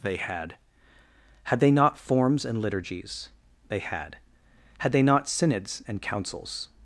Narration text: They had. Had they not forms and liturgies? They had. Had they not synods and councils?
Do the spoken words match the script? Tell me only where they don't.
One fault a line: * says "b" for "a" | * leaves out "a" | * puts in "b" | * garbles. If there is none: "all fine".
all fine